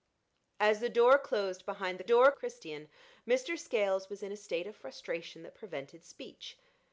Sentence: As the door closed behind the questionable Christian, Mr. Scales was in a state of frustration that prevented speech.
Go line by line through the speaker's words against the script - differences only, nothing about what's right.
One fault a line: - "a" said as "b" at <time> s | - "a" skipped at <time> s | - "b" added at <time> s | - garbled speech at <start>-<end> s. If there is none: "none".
- "questionable" said as "door" at 2.0 s